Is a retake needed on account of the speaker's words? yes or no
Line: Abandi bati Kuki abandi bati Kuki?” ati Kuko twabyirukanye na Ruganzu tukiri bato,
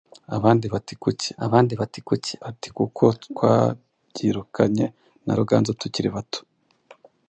no